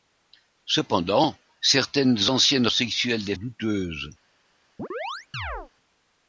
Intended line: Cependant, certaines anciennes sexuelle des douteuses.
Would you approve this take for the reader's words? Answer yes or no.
yes